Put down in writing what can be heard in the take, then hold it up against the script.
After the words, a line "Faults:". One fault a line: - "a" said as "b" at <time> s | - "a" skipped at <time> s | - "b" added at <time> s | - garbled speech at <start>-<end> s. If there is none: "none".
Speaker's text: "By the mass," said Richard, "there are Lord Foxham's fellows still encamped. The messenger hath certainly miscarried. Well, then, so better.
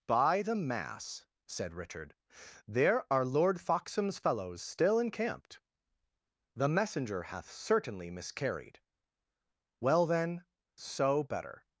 "By the mass," said Richard, "there are Lord Foxham's fellows still encamped. The messenger hath certainly miscarried. Well, then, so better.
Faults:
none